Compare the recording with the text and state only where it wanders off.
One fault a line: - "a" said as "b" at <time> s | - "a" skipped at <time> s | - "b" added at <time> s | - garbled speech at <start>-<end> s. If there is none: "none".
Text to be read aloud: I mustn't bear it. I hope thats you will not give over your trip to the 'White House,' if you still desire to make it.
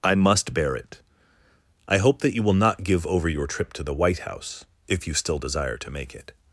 - "mustn't" said as "must" at 0.1 s
- "thats" said as "that" at 2.2 s